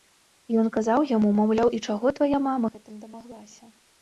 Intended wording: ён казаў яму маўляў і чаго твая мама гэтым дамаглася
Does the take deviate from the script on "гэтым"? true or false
false